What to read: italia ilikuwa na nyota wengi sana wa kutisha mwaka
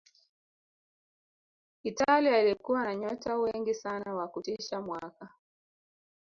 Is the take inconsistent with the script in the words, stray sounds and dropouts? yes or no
no